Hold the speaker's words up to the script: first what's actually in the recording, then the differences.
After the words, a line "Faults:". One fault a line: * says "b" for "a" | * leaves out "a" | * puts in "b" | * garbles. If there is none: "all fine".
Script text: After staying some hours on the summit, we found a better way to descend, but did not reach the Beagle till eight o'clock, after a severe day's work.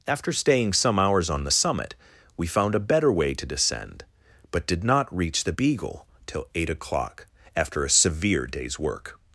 After staying some hours on the summit, we found a better way to descend, but did not reach the Beagle till eight o'clock, after a severe day's work.
Faults:
all fine